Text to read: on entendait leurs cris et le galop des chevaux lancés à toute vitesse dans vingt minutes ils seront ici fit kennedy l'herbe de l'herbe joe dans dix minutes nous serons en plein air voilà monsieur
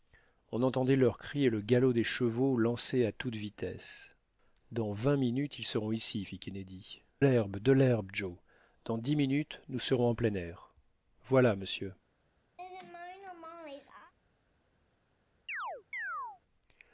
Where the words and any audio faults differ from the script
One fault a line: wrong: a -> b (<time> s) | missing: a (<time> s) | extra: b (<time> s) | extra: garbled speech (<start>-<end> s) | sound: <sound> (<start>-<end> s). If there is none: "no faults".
sound: laugh (12.6-14.1 s)
sound: chirp (15.5-16.4 s)